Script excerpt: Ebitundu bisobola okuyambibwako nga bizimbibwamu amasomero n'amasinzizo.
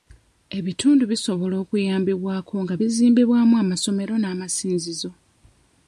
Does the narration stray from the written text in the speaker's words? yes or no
no